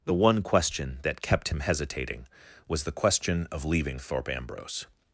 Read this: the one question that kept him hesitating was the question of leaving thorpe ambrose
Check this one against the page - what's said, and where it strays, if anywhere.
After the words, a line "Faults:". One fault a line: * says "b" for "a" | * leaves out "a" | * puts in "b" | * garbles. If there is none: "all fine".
the one question that kept him hesitating was the question of leaving thorpe ambrose
Faults:
all fine